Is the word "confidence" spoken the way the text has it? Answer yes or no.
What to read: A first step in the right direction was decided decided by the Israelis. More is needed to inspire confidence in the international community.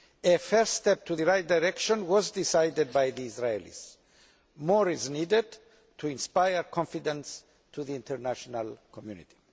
yes